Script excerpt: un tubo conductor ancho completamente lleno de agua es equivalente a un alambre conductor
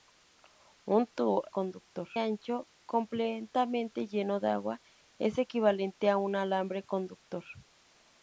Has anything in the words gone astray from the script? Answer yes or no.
no